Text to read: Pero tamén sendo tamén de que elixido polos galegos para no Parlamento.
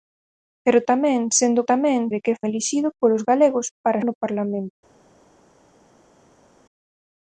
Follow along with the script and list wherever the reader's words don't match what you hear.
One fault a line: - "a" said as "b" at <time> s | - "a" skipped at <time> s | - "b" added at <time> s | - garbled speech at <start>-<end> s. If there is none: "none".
none